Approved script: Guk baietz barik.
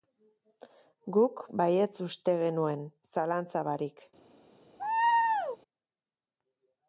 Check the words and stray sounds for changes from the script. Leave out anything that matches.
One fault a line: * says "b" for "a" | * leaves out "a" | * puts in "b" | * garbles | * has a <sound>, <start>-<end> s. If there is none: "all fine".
* puts in "uste genuen zalantza"
* has a laugh, 4.8-5.6 s